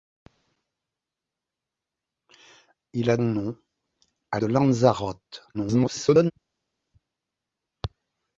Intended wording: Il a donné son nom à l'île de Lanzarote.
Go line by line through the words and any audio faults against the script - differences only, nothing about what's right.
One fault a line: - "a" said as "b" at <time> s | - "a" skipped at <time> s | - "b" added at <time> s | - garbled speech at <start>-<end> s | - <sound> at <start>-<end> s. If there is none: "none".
- "donné son" skipped at 3.2 s
- "l'île" skipped at 4.4 s
- garbled speech at 5.5-6.3 s